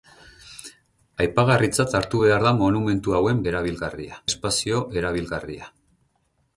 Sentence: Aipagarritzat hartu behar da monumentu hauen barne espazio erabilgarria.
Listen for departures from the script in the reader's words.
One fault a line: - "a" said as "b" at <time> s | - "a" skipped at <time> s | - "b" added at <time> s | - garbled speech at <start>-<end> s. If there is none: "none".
- "barne" said as "erabilgarria" at 3.5 s